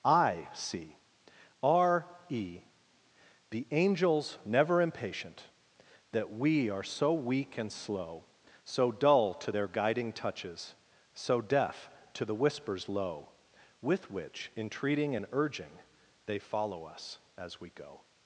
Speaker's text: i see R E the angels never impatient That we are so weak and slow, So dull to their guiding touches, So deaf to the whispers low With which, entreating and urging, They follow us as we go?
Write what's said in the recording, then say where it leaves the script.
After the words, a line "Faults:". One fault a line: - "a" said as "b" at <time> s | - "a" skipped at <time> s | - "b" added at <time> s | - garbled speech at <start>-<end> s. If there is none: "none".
i see R E the angels never impatient That we are so weak and slow, So dull to their guiding touches, So deaf to the whispers low With which, entreating and urging, They follow us as we go?
Faults:
none